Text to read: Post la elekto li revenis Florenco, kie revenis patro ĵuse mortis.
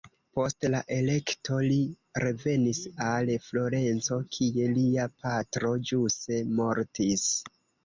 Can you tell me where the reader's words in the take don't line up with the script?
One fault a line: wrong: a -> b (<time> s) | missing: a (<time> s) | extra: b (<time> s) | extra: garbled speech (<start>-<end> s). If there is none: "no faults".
extra: al (3.1 s)
wrong: revenis -> lia (4.8 s)